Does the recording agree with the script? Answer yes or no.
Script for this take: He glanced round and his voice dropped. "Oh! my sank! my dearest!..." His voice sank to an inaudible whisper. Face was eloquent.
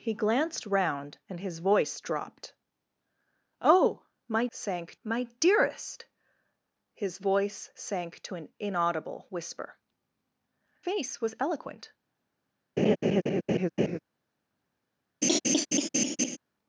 yes